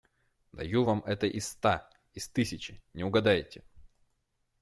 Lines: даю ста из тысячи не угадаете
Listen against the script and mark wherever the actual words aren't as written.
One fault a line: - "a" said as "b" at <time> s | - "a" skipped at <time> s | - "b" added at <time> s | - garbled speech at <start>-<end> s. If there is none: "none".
- "вам это из" added at 0.8 s